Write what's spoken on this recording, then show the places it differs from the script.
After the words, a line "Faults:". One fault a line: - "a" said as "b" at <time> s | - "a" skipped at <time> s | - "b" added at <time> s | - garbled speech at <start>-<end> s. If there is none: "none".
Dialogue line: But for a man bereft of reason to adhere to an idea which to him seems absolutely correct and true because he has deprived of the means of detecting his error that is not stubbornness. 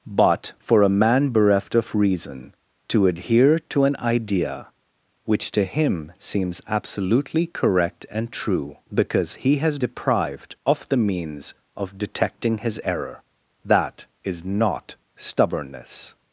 But for a man bereft of reason to adhere to an idea which to him seems absolutely correct and true because he has deprived of the means of detecting his error that is not stubbornness.
Faults:
none